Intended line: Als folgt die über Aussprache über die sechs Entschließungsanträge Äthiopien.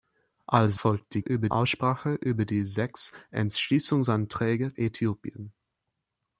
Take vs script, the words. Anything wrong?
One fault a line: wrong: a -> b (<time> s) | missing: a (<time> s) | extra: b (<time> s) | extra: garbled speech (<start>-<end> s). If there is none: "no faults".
no faults